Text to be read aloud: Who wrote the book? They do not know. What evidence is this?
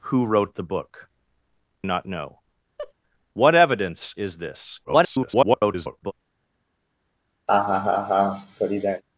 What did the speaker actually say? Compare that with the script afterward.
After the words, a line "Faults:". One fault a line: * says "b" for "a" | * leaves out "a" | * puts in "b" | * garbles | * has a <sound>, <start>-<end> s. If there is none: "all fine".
Who wrote the book? Not know. What evidence is this? [garbled]
Faults:
* leaves out "They do"
* has a laugh, 2.8-2.9 s
* garbles
* has a laugh, 7.5-9.0 s